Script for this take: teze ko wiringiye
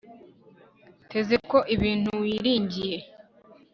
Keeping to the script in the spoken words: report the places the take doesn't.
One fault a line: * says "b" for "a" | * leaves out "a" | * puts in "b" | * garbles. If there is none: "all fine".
* puts in "ibintu"